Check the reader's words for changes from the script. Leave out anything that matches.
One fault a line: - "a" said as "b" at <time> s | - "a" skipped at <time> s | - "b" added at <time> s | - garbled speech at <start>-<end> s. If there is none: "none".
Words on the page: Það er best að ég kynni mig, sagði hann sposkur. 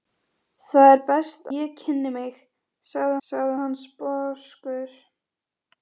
- "að" skipped at 1.5 s
- "sagði" added at 3.3 s